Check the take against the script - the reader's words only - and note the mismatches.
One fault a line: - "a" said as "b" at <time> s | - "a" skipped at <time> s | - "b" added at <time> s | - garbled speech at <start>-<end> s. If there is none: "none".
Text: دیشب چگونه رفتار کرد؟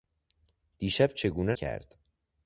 - "رفتار" skipped at 1.5 s